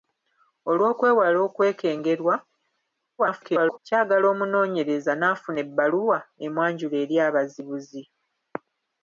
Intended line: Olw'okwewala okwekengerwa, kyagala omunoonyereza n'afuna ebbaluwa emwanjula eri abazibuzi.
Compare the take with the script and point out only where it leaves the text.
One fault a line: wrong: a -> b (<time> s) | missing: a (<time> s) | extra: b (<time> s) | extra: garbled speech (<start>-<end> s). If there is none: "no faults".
extra: garbled speech (3.2-3.8 s)